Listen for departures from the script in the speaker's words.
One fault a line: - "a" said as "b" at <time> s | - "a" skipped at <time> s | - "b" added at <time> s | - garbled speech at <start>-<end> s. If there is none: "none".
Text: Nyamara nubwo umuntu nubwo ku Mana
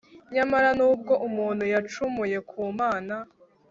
- "nubwo" said as "yacumuye" at 1.7 s